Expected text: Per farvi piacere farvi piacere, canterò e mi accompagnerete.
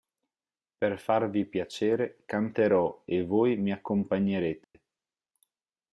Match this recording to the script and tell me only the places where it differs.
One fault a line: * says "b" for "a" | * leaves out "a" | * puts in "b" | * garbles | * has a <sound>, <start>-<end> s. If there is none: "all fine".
* leaves out "farvi piacere"
* puts in "voi"
* has a dropout, 4.6-4.7 s